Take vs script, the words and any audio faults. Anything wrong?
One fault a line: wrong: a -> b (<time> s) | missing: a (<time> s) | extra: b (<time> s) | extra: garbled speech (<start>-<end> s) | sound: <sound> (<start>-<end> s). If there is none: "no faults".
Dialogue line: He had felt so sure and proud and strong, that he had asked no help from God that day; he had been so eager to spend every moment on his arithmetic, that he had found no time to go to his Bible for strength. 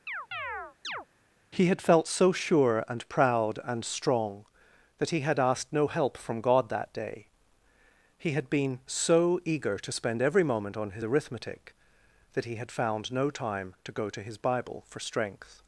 sound: chirp (0.1-1.1 s)